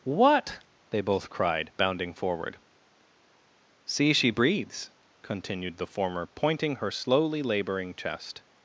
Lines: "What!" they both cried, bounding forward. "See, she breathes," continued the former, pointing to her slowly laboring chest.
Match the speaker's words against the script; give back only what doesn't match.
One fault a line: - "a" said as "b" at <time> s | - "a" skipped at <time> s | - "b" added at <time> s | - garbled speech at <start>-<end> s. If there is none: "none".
- "to" skipped at 6.8 s